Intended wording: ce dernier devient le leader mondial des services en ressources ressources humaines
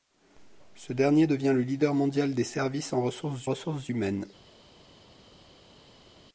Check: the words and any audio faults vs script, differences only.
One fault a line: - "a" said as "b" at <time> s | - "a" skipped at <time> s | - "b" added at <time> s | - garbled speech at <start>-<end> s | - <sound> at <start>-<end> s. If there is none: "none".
none